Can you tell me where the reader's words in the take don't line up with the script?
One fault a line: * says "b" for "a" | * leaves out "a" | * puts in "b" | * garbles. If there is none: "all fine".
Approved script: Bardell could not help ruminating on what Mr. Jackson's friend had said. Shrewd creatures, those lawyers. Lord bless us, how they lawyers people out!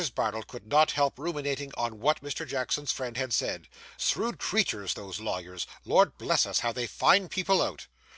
* says "find" for "lawyers"